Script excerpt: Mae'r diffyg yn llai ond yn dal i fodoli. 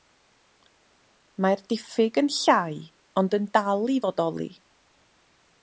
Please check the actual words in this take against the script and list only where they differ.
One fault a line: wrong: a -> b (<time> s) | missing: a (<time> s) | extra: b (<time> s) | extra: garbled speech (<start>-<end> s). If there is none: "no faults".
no faults